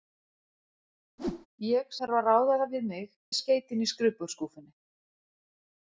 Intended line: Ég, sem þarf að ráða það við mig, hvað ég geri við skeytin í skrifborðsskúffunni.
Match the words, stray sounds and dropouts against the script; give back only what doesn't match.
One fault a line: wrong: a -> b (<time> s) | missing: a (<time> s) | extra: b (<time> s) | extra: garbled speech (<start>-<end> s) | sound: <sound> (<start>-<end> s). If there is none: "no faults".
sound: whoosh (1.2-1.5 s)
missing: sem (1.9 s)
missing: hvað ég geri (3.1 s)